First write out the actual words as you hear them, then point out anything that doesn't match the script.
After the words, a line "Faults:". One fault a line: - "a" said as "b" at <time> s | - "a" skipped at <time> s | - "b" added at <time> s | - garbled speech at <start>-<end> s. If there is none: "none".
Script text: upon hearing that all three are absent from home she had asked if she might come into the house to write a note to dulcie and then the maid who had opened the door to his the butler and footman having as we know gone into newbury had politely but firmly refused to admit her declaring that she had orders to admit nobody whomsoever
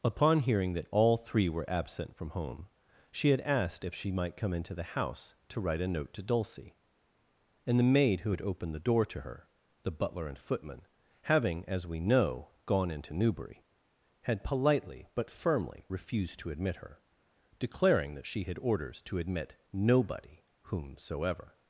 upon hearing that all three were absent from home she had asked if she might come into the house to write a note to dulcie and the maid who had opened the door to her the butler and footman having as we know gone into newbury had politely but firmly refused to admit her declaring that she had orders to admit nobody whomsoever
Faults:
- "are" said as "were" at 1.5 s
- "then" skipped at 7.8 s
- "his" said as "her" at 9.2 s